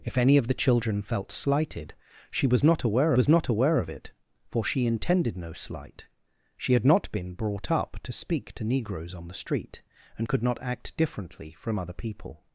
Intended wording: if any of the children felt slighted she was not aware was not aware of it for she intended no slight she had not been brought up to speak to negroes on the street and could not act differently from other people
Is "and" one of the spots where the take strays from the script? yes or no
no